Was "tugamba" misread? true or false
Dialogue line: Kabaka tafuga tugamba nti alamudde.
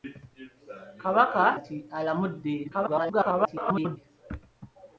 true